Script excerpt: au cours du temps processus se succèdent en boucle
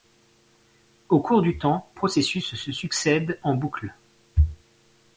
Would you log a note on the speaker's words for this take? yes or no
no